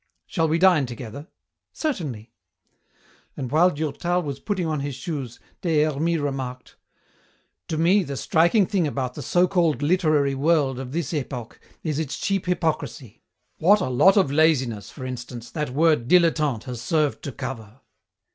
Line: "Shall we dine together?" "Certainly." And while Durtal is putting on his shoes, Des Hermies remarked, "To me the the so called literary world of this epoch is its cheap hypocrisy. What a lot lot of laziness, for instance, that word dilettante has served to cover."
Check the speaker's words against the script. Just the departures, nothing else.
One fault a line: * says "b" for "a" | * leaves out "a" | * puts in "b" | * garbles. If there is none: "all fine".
* says "was" for "is"
* puts in "striking thing about"
* leaves out "lot"